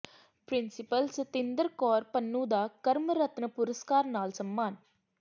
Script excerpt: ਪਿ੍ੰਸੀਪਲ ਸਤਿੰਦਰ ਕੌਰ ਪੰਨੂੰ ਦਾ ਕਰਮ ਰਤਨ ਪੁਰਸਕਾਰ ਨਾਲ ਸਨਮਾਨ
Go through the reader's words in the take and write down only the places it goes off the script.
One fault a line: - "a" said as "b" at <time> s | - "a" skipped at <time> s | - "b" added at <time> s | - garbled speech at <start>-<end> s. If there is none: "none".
none